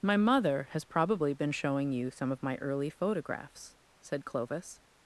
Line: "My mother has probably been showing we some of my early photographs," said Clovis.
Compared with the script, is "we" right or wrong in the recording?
wrong